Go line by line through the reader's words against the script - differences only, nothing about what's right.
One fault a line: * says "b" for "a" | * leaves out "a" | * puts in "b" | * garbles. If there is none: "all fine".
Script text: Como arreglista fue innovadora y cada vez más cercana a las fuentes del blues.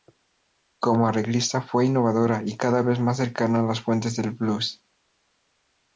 all fine